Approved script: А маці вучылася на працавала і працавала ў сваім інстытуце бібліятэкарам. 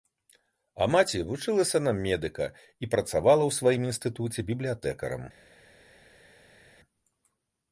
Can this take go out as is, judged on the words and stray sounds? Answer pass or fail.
fail